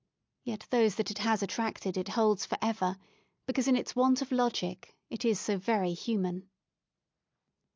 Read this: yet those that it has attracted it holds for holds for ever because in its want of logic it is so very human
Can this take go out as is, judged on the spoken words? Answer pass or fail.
fail